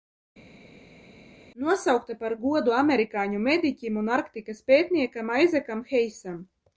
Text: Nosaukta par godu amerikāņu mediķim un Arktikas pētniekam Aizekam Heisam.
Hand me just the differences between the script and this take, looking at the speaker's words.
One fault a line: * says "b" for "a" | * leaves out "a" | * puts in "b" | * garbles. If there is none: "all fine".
all fine